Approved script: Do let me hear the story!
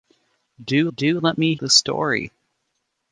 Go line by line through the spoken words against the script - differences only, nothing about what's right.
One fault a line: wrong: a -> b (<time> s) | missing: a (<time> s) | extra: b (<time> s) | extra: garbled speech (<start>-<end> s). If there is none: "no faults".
extra: do (1.0 s)
missing: hear (1.6 s)